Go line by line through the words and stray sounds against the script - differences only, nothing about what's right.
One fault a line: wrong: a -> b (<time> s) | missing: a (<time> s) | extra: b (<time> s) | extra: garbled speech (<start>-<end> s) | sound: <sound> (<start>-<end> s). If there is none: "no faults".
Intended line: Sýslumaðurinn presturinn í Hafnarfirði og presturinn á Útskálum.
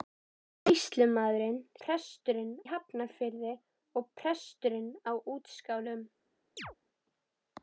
sound: chirp (6.6-6.8 s)